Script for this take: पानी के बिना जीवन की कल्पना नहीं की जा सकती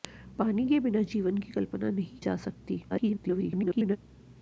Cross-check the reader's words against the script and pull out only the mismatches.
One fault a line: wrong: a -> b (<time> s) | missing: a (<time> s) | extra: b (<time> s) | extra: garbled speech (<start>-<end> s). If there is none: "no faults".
missing: की (2.2 s)
extra: garbled speech (2.9-4.0 s)